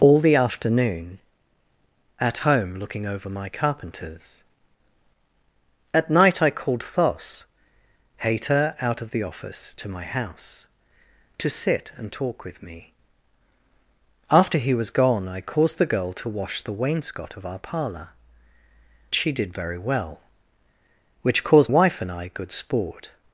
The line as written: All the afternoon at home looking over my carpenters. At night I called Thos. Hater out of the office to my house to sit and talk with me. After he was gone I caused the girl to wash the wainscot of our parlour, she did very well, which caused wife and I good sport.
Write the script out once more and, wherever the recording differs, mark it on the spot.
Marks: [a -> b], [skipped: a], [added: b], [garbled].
All the afternoon at home looking over my carpenters. At night I called Thos. Hater out of the office to my house to sit and talk with me. After he was gone I caused the girl to wash the wainscot of our parlour, she did very well, which caused wife and I good sport.